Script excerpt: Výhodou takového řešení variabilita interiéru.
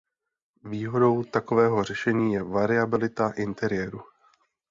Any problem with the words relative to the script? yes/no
yes